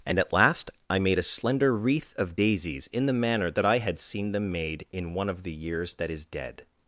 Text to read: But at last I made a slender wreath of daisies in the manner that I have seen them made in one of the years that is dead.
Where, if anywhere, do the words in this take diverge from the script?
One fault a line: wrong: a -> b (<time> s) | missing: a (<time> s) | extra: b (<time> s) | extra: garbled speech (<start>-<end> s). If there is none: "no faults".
wrong: But -> And (0.1 s)
wrong: have -> had (3.8 s)